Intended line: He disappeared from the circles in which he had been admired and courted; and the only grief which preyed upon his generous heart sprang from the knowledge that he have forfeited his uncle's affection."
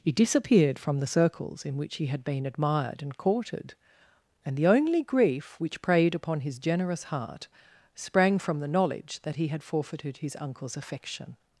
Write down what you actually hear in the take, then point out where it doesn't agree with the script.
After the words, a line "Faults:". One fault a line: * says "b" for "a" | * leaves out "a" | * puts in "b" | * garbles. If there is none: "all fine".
He disappeared from the circles in which he had been admired and courted; and the only grief which preyed upon his generous heart sprang from the knowledge that he had forfeited his uncle's affection."
Faults:
* says "had" for "have"